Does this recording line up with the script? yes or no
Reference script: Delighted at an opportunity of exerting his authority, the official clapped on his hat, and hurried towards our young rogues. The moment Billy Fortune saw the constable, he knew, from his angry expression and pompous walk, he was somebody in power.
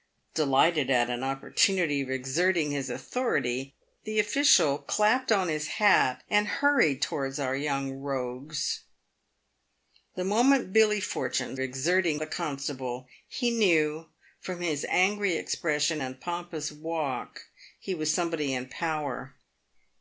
no